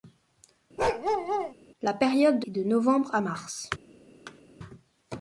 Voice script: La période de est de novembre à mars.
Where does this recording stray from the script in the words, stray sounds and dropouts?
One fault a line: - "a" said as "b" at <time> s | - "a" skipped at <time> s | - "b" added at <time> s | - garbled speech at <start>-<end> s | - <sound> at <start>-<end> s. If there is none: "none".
- bark at 0.8-1.5 s
- thud at 4.3-4.4 s